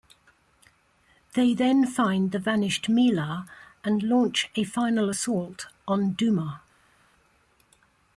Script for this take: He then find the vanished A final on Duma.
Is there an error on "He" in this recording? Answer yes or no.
yes